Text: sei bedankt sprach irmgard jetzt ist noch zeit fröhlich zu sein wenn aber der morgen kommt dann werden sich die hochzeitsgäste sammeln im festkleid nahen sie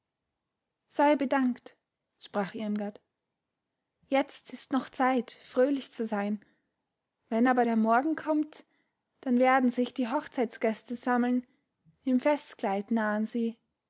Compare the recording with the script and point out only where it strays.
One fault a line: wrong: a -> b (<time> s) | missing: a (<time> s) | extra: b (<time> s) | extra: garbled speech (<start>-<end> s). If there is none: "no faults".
no faults